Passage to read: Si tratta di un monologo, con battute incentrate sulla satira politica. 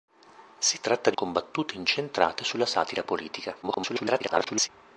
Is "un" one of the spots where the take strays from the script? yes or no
yes